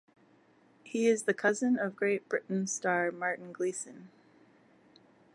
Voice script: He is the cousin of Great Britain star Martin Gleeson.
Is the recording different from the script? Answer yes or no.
no